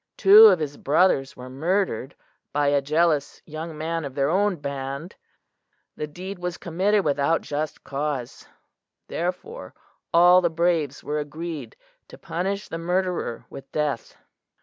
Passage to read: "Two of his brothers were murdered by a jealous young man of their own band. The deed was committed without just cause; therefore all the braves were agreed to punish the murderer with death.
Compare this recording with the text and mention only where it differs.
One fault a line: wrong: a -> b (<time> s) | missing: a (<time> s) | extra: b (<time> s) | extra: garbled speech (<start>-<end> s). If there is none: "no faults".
no faults